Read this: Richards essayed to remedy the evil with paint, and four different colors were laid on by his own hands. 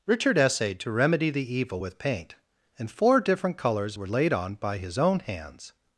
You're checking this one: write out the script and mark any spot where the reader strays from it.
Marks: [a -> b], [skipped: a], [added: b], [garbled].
[Richards -> Richard] essayed to remedy the evil with paint, and four different colors were laid on by his own hands.